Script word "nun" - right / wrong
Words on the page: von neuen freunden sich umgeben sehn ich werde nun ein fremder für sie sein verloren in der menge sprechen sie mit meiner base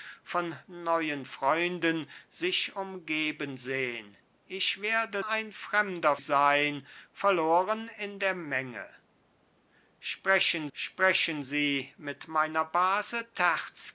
wrong